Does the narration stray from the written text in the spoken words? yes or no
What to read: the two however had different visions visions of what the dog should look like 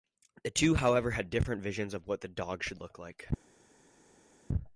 yes